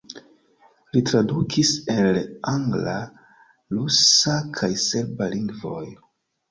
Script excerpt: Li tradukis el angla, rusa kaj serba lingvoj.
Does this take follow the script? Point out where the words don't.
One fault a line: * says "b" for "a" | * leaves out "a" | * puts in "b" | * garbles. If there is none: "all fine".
all fine